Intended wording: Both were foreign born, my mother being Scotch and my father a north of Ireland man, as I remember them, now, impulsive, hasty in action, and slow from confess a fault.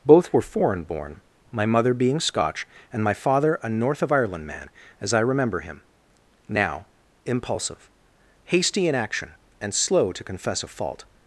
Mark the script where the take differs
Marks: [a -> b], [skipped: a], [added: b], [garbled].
Both were foreign born, my mother being Scotch and my father a north of Ireland man, as I remember [them, -> him] now, impulsive, hasty in action, and slow [from -> to] confess a fault.